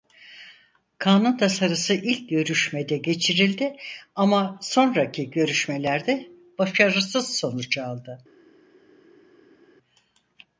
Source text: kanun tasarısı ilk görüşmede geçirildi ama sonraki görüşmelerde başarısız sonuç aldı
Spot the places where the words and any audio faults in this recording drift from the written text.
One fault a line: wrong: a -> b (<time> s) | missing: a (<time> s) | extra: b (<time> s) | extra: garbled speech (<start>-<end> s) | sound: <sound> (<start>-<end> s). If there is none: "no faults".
no faults